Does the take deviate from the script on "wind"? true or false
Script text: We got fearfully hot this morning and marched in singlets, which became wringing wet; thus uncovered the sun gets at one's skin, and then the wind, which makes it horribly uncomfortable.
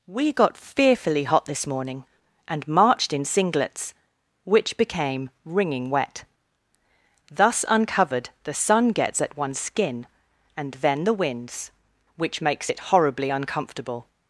true